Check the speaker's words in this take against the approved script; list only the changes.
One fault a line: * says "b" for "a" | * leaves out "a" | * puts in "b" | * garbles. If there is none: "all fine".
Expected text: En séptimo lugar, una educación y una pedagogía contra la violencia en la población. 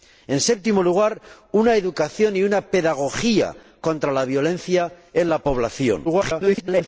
* garbles